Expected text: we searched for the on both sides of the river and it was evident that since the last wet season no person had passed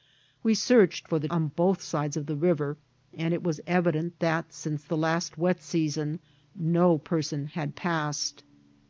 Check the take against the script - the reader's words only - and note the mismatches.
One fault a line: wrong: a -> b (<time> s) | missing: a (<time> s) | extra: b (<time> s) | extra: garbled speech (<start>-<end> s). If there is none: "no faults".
no faults